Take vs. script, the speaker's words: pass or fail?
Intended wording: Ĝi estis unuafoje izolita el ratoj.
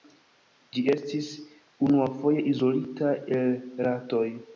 pass